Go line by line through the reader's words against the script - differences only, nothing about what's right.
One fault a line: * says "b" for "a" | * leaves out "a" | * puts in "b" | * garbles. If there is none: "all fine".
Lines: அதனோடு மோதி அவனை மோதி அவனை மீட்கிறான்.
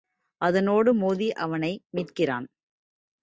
* leaves out "மோதி அவனை"